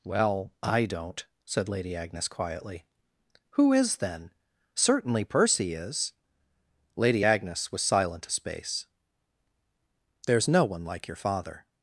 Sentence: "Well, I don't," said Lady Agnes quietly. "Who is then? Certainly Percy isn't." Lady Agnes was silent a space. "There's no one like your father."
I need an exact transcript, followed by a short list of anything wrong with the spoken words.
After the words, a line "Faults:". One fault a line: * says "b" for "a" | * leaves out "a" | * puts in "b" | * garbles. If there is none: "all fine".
"Well, I don't," said Lady Agnes quietly. "Who is then? Certainly Percy is." Lady Agnes was silent a space. "There's no one like your father."
Faults:
* says "is" for "isn't"